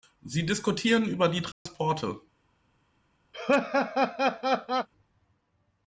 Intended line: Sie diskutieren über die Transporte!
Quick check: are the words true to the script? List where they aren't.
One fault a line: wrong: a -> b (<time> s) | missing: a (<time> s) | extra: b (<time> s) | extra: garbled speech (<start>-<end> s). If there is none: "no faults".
no faults